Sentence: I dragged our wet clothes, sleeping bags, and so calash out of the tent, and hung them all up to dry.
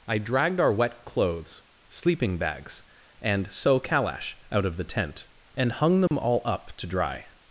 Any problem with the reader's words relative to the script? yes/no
no